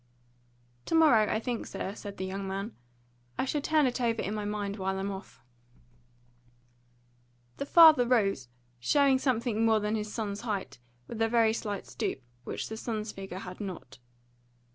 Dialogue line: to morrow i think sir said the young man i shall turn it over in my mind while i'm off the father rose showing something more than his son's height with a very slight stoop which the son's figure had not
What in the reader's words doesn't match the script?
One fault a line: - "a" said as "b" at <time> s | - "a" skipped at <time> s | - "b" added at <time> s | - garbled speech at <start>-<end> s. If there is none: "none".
none